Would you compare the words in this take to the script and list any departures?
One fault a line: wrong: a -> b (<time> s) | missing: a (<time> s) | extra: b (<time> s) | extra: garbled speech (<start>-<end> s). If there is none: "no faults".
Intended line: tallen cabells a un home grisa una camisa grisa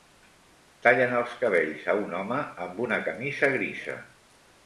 extra: els (1.2 s)
wrong: grisa -> amb (2.7 s)